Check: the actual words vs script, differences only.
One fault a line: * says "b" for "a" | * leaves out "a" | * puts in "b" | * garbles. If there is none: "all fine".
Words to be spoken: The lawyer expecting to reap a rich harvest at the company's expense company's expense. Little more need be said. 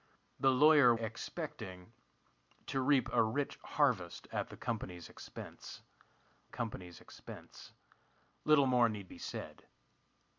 all fine